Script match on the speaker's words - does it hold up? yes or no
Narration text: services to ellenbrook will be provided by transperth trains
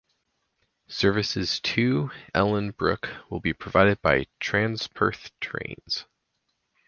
yes